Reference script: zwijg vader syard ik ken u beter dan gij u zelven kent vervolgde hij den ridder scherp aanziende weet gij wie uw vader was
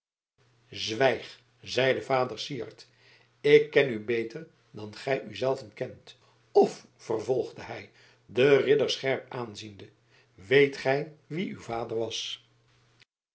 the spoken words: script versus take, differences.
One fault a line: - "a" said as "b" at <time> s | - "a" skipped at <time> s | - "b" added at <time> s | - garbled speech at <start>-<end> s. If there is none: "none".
- "zeide" added at 1.6 s
- "of" added at 6.5 s